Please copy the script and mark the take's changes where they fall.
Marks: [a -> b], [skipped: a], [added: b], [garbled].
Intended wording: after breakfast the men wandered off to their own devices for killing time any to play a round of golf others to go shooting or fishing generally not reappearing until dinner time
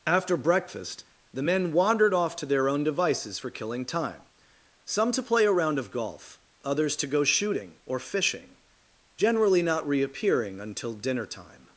after breakfast the men wandered off to their own devices for killing time [any -> some] to play a round of golf others to go shooting or fishing generally not reappearing until dinner time